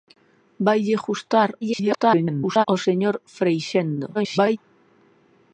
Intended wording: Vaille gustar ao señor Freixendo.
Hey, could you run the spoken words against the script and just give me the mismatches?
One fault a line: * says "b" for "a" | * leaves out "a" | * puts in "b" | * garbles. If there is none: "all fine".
* garbles
* garbles